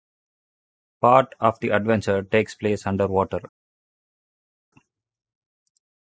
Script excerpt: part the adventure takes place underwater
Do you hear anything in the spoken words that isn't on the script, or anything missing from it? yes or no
yes